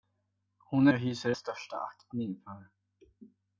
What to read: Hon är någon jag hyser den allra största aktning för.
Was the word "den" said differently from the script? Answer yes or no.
yes